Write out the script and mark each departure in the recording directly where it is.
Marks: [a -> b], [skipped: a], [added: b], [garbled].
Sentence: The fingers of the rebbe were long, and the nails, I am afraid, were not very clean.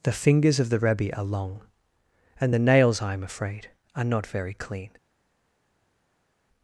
The fingers of the rebbe [were -> are] long, and the nails, I am afraid, [were -> are] not very clean.